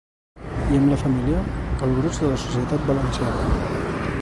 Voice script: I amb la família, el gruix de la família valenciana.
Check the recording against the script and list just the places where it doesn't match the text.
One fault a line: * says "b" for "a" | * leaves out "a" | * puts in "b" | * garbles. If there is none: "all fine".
* says "societat" for "família"